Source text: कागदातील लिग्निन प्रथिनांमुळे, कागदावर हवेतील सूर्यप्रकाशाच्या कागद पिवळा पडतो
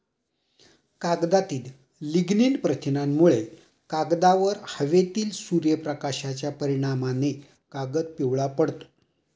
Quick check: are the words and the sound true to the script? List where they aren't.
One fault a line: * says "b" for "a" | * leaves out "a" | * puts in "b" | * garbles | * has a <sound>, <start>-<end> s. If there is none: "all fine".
* puts in "परिणामाने"